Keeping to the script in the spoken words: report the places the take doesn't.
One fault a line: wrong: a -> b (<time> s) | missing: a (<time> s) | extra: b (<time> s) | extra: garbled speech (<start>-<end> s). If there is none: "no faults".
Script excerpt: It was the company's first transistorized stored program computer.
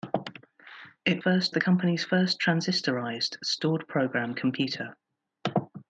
wrong: was -> first (1.2 s)